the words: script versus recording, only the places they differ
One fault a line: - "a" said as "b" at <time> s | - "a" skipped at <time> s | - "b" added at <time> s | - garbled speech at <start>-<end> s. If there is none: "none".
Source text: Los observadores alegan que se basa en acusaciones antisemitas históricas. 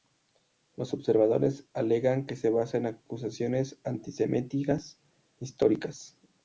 none